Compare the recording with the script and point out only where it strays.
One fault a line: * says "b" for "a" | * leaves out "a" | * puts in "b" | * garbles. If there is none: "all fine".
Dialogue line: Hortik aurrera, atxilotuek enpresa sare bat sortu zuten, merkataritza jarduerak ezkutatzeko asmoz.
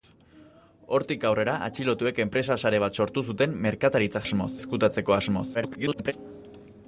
* says "asmoz" for "jarduerak"
* garbles